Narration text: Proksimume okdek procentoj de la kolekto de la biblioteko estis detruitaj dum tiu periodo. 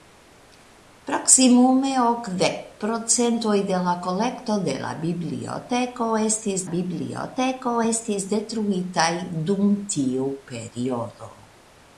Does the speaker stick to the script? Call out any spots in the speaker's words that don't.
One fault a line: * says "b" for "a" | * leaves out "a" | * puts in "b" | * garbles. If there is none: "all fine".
* puts in "biblioteko estis"